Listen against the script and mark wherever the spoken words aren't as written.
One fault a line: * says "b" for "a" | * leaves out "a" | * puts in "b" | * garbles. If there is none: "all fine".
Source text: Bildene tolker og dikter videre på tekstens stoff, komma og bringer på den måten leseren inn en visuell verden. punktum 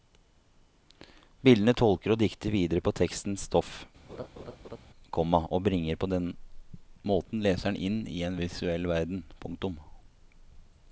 * puts in "i"